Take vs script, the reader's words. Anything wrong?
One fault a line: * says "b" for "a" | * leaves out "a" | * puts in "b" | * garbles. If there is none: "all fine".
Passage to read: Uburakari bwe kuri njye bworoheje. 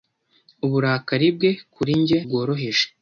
all fine